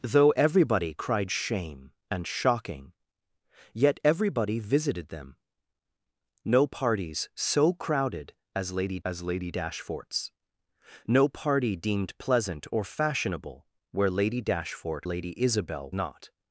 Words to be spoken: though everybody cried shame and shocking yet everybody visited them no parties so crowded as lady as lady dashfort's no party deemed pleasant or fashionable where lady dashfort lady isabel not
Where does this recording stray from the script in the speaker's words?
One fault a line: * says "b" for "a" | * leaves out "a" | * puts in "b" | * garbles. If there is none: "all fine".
all fine